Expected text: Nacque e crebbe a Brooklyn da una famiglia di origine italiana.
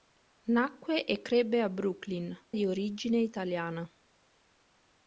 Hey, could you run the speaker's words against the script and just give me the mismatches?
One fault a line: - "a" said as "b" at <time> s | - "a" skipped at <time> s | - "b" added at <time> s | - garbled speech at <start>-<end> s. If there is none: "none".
- "da una famiglia" skipped at 2.4 s